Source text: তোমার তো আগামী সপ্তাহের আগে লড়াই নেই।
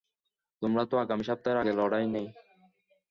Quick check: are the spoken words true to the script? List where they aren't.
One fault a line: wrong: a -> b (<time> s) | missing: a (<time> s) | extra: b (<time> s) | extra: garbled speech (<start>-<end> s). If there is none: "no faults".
no faults